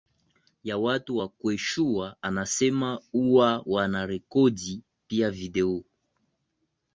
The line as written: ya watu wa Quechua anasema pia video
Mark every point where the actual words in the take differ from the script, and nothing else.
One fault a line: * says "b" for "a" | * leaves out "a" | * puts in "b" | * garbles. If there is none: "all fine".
* puts in "huwa wanarekodi"